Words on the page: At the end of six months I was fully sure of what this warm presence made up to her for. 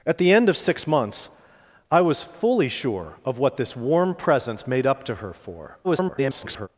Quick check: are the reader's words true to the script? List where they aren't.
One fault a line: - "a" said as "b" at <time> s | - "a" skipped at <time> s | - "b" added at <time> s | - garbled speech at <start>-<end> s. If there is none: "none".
- garbled speech at 5.8-6.7 s